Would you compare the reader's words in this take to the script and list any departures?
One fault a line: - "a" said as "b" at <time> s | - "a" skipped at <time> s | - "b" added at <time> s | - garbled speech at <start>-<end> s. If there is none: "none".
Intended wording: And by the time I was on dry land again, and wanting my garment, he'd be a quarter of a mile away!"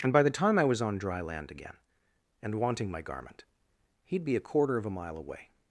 none